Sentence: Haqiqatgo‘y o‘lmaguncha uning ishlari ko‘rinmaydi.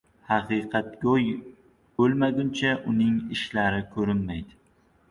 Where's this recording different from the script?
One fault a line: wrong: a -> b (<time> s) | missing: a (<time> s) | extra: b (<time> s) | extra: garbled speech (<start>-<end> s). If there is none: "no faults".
no faults